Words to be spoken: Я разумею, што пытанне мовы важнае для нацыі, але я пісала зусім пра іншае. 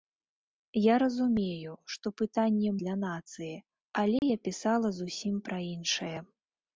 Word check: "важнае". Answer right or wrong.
wrong